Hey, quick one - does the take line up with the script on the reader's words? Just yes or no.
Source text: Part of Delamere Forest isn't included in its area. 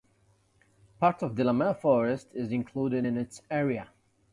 no